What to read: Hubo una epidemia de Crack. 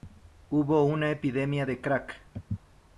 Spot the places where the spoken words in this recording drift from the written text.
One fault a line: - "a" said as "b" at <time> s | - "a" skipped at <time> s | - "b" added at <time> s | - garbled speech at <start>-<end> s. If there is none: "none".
none